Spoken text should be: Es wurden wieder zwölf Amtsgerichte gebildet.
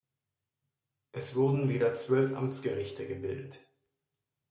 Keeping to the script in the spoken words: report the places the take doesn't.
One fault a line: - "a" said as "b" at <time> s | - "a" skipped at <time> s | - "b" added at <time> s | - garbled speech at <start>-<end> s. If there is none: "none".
none